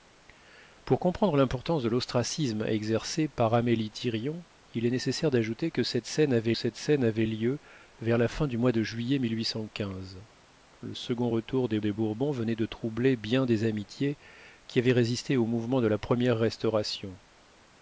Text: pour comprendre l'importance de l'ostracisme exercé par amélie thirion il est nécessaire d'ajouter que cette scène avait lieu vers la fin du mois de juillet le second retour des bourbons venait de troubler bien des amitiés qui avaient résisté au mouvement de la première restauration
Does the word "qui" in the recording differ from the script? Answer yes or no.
no